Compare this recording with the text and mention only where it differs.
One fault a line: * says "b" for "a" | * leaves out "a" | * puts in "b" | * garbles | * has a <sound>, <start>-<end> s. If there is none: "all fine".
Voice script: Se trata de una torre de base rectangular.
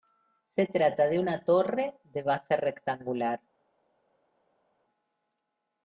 all fine